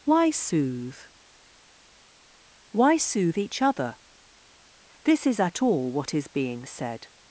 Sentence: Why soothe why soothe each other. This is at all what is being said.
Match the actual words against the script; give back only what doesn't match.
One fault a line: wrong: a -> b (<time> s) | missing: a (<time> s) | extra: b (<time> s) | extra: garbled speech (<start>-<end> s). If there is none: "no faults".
no faults